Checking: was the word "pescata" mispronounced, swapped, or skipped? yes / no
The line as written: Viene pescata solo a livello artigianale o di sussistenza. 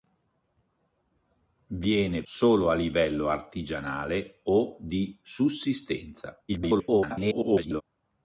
yes